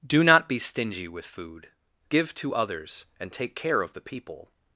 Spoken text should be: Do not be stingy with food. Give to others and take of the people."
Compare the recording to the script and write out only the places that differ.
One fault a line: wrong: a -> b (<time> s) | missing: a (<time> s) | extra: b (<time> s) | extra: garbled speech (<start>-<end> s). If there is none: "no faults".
extra: care (3.5 s)